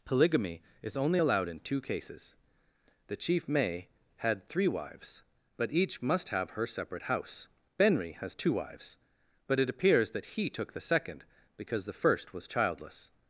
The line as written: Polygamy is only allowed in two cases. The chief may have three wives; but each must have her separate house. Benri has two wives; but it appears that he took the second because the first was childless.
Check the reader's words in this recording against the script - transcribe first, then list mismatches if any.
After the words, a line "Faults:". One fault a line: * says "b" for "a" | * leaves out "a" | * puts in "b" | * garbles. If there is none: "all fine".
Polygamy is only allowed in two cases. The chief may had three wives; but each must have her separate house. Benri has two wives; but it appears that he took the second because the first was childless.
Faults:
* says "had" for "have"